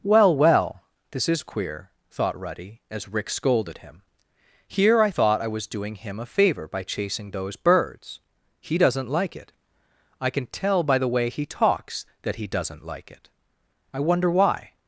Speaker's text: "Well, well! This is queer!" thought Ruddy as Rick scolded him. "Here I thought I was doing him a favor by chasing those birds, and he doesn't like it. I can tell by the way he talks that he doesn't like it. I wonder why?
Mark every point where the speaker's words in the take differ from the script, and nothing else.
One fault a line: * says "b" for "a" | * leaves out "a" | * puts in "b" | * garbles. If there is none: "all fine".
* leaves out "and"